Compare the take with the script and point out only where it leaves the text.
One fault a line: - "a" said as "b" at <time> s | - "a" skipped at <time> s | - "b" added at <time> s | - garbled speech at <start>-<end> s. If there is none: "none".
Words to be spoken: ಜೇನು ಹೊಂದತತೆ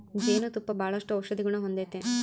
- "ತುಪ್ಪ ಬಾಳಷ್ಟು ಔಷದಿಗುಣ" added at 0.5 s